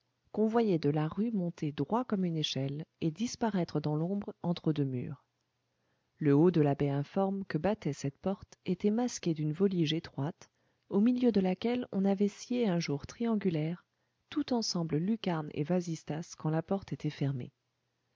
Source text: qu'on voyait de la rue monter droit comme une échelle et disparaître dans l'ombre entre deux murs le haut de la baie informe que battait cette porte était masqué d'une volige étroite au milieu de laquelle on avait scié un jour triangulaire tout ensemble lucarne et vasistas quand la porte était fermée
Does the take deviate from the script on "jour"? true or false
false